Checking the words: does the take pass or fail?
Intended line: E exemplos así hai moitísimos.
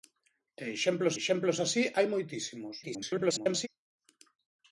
fail